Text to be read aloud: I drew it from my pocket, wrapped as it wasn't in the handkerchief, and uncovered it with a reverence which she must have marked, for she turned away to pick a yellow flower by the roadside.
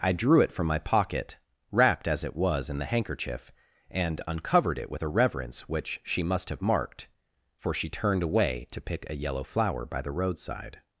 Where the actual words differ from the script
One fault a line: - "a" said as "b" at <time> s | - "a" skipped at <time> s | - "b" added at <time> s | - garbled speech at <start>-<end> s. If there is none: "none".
- "wasn't" said as "was" at 2.4 s